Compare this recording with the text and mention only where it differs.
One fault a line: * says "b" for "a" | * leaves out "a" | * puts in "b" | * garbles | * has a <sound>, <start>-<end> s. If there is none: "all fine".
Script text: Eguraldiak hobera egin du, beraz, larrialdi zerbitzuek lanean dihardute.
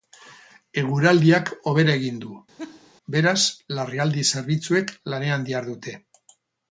* has a laugh, 2.6-2.9 s